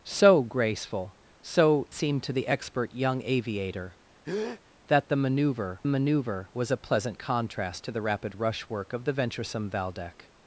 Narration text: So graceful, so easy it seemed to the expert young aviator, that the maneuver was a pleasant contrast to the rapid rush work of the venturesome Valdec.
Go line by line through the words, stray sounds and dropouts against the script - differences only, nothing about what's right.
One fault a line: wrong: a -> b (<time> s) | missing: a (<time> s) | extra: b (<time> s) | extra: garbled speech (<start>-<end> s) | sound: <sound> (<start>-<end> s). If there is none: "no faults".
missing: easy it (1.9 s)
sound: breath (4.2-4.6 s)
extra: maneuver (5.9 s)